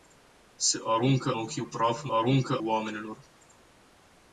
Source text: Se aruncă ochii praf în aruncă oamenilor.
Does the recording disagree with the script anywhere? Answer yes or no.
no